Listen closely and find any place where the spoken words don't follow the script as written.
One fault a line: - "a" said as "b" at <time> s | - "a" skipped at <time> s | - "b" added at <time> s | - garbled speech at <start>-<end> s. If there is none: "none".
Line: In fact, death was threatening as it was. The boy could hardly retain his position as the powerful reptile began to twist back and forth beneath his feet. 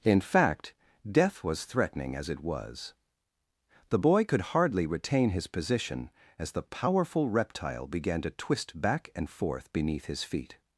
none